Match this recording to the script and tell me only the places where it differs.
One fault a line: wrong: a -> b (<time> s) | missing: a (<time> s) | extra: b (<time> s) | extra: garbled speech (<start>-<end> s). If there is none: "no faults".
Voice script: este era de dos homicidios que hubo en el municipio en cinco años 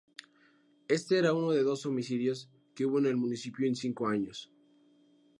extra: uno (1.3 s)